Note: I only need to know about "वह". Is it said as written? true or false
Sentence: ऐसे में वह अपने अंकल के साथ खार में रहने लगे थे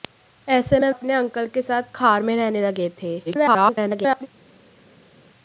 false